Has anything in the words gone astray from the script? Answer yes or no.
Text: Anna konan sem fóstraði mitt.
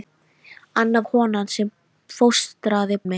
no